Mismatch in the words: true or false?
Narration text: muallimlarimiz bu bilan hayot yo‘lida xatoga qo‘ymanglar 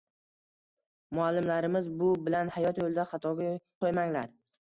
false